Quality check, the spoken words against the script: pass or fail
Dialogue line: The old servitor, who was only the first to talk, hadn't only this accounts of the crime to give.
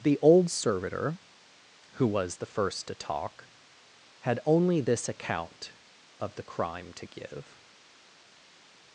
fail